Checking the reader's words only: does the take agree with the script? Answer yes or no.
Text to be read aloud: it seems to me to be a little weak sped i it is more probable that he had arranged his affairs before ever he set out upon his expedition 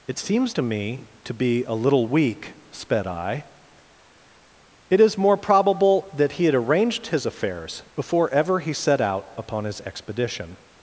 yes